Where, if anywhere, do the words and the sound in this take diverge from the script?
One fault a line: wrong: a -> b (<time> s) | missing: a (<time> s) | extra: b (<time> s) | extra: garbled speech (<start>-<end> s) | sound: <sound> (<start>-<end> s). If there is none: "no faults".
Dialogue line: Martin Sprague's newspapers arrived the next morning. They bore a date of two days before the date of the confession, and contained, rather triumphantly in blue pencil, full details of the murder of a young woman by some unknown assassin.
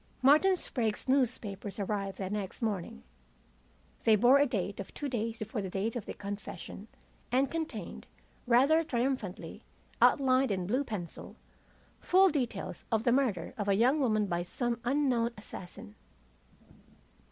extra: outlined (10.0 s)